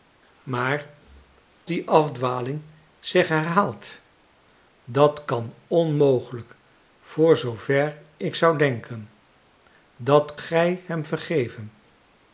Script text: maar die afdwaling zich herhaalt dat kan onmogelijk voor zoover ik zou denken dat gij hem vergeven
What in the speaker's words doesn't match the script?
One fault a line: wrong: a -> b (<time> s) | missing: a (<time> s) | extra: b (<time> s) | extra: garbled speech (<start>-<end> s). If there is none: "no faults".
no faults